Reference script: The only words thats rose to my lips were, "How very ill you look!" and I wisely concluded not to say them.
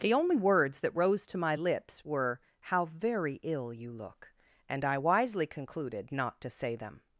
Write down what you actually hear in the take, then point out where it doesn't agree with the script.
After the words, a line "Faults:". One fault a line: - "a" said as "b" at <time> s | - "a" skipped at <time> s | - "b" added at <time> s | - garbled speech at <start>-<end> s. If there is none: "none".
The only words that rose to my lips were, "How very ill you look!" and I wisely concluded not to say them.
Faults:
- "thats" said as "that" at 0.8 s